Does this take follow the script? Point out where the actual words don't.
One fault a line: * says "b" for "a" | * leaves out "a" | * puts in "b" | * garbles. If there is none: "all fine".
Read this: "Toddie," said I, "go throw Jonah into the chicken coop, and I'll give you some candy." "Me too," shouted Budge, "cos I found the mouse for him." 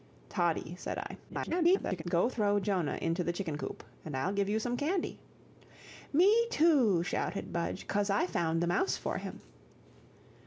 * garbles